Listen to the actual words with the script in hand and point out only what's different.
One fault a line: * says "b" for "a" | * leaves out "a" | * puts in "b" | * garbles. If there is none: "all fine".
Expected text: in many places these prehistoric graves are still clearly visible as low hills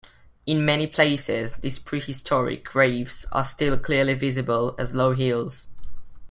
all fine